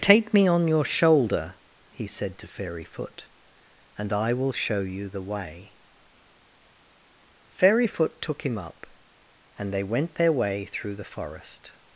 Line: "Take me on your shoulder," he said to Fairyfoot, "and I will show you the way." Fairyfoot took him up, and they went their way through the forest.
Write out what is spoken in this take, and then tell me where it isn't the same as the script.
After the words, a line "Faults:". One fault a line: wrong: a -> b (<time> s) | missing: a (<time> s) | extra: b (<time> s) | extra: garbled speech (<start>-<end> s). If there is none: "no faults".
"Take me on your shoulder," he said to Fairyfoot, "and I will show you the way." Fairyfoot took him up, and they went their way through the forest.
Faults:
no faults